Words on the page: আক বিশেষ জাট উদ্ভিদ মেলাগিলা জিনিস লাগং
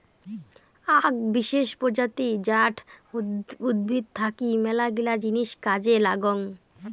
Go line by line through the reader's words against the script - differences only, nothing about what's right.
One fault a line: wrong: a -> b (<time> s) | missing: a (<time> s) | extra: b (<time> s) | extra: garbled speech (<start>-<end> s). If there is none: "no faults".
extra: প্রজাতি (1.8 s)
extra: থাকি (4.1 s)
extra: কাজে (5.7 s)